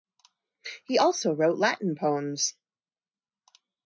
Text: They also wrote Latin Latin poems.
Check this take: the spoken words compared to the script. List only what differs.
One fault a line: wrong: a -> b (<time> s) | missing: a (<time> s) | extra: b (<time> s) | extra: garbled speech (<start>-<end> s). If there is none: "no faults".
wrong: They -> He (0.8 s)
missing: Latin (2.0 s)